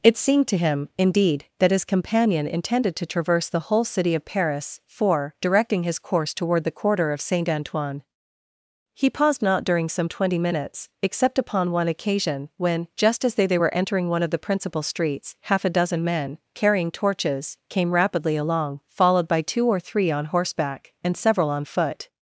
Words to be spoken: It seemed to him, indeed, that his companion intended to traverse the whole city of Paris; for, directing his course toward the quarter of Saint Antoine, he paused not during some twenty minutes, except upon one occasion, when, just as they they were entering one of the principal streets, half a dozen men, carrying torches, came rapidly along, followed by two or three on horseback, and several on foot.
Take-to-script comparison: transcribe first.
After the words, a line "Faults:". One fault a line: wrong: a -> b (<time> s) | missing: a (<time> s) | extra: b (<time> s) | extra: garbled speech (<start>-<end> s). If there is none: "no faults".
It seemed to him, indeed, that his companion intended to traverse the whole city of Paris; for, directing his course toward the quarter of Saint Antoine, he paused not during some twenty minutes, except upon one occasion, when, just as they they were entering one of the principal streets, half a dozen men, carrying torches, came rapidly along, followed by two or three on horseback, and several on foot.
Faults:
no faults